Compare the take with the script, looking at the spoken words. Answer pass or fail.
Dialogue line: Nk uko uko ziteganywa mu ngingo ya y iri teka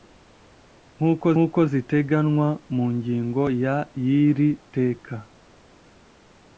pass